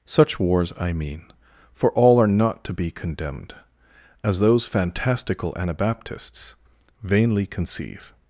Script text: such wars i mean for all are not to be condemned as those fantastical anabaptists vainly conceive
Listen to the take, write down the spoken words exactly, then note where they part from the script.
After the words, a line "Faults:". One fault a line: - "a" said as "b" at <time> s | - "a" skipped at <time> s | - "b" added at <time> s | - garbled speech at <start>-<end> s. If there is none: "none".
such wars i mean for all are not to be condemned as those fantastical anabaptists vainly conceive
Faults:
none